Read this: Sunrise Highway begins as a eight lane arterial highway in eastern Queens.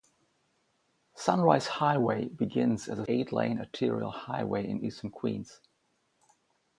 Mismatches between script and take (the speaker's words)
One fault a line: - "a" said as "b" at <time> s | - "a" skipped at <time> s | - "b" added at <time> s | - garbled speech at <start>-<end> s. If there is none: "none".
none